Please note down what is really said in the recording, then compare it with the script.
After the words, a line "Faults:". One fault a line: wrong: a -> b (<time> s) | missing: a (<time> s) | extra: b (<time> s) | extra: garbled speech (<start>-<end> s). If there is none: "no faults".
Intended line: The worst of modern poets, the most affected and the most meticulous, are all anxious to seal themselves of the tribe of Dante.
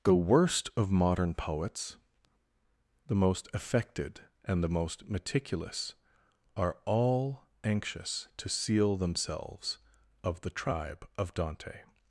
The worst of modern poets, the most affected and the most meticulous, are all anxious to seal themselves of the tribe of Dante.
Faults:
no faults